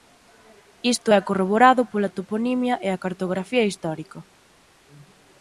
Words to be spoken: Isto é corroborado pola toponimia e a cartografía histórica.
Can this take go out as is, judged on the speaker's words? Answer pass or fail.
pass